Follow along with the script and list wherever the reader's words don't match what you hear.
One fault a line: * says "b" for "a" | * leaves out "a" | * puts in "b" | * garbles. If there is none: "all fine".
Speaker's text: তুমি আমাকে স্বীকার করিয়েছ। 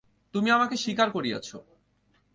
all fine